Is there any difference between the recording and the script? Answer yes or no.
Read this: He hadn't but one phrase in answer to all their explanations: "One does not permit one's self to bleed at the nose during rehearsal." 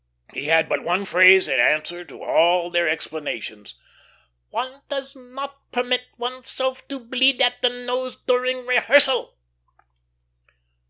yes